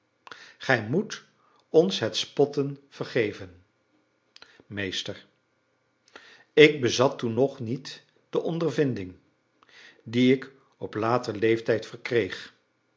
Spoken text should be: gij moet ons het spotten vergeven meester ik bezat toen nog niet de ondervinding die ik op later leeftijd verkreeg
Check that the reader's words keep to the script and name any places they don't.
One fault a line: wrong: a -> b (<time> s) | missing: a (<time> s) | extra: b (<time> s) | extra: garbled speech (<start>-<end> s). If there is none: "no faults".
no faults